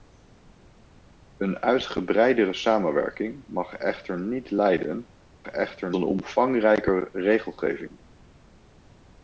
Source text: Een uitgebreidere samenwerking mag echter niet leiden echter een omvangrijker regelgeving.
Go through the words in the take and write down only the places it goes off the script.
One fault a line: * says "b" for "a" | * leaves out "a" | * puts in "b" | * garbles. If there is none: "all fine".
all fine